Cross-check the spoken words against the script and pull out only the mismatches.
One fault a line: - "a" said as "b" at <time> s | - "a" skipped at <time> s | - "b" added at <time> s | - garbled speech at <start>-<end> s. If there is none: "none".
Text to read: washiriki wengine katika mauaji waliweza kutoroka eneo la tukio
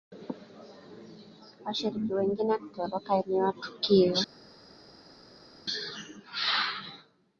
- "katika mauaji waliweza" skipped at 2.6 s
- "la" skipped at 3.5 s